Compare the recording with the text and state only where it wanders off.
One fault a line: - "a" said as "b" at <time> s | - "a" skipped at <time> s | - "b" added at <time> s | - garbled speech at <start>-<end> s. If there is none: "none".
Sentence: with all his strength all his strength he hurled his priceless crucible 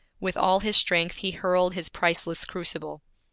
- "all his strength" skipped at 1.2 s